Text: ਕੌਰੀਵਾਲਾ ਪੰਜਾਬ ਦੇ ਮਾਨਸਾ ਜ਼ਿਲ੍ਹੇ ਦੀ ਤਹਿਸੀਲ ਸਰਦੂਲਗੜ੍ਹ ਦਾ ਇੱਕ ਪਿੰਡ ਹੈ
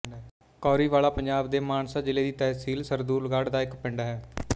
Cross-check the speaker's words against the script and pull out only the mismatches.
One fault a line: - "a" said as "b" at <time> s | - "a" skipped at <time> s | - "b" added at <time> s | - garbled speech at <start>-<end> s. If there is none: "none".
none